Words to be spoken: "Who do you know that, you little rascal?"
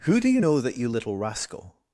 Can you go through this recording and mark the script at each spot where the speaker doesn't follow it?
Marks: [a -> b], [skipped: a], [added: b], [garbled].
"Who do you know that, you little rascal?"